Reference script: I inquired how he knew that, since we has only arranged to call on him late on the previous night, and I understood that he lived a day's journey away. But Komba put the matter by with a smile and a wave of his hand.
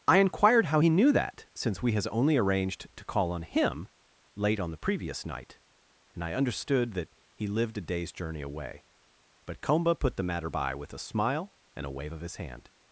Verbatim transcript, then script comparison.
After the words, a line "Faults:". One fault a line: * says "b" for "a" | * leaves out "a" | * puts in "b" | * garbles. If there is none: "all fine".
I inquired how he knew that, since we has only arranged to call on him late on the previous night, and I understood that he lived a day's journey away. But Komba put the matter by with a smile and a wave of his hand.
Faults:
all fine